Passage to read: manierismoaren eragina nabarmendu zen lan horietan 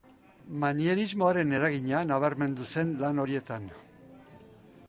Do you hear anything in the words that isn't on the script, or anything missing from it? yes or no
no